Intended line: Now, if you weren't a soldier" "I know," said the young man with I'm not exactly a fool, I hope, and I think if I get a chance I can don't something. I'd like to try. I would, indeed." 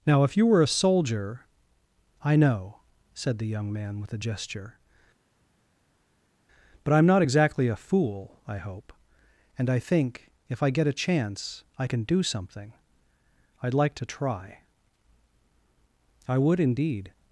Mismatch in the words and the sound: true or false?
true